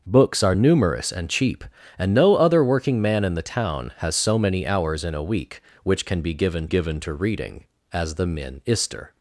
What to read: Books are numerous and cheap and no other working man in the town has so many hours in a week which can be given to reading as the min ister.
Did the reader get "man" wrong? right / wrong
right